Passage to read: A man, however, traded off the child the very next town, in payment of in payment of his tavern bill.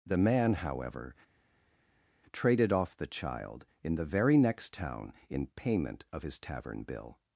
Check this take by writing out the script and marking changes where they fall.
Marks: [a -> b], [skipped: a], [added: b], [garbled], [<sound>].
[A -> The] man, however, traded off the child [added: in] the very next town, in payment of [skipped: in payment of] his tavern bill.